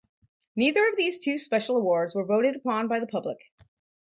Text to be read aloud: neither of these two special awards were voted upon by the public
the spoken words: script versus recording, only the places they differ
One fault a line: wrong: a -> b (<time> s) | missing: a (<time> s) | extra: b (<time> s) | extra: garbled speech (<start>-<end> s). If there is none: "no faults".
no faults